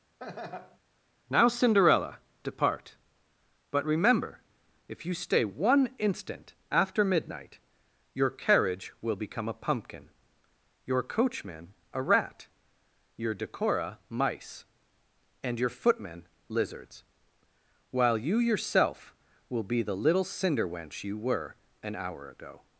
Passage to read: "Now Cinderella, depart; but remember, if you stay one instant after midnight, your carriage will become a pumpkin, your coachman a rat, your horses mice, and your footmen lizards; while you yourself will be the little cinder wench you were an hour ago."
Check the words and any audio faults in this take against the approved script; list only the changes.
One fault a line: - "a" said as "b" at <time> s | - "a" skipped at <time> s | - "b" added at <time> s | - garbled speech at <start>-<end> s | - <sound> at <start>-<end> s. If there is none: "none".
- laugh at 0.2-0.8 s
- "horses" said as "decora" at 13.3 s